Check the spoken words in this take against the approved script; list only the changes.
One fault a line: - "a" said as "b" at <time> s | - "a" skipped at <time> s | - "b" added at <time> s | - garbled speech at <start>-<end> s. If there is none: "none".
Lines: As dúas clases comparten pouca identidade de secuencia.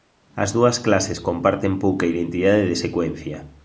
none